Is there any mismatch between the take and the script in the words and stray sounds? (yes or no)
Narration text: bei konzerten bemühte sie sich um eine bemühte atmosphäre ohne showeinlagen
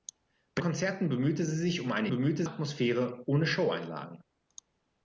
no